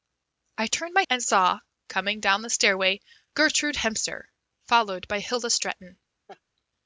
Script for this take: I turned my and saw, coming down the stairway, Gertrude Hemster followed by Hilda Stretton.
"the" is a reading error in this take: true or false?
false